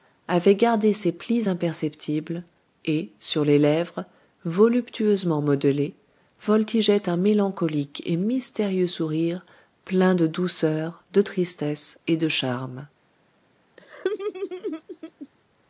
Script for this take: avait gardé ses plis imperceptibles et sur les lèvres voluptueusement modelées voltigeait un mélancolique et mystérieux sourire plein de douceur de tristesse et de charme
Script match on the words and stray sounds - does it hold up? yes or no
no